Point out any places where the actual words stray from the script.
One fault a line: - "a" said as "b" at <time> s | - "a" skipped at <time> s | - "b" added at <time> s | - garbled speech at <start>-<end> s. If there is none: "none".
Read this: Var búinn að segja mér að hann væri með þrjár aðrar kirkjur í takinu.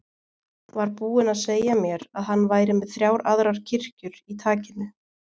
none